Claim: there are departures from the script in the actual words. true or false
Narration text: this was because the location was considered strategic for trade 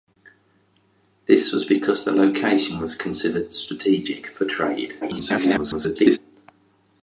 true